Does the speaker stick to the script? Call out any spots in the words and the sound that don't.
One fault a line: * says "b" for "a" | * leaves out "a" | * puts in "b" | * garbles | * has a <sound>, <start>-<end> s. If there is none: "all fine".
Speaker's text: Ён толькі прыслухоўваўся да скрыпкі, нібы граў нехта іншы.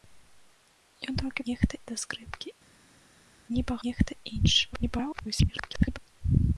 * says "нехта" for "прыслухоўваўся"
* leaves out "граў"
* garbles